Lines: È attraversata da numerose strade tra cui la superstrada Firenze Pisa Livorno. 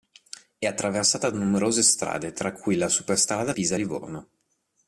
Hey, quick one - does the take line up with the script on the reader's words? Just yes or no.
no